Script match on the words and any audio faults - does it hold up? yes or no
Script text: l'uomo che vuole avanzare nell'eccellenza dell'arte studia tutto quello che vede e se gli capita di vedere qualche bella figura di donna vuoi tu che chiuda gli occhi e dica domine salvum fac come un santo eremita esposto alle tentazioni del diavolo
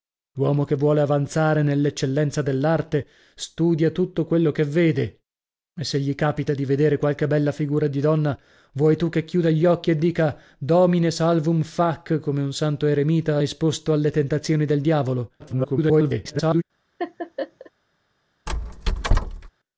no